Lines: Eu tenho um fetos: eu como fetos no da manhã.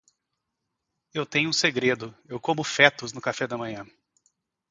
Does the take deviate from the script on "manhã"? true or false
false